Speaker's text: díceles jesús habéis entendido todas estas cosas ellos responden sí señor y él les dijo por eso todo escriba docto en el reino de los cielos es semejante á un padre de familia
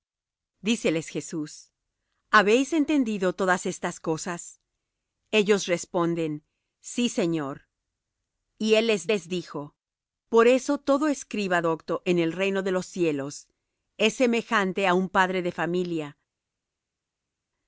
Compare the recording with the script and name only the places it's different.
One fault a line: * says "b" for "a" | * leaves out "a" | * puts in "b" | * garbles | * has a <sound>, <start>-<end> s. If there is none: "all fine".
* puts in "les"